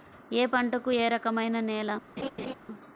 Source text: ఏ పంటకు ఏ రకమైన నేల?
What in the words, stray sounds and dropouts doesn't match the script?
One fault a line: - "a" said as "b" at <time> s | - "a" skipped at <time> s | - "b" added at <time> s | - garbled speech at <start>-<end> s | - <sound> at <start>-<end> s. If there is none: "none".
- laugh at 2.2-2.5 s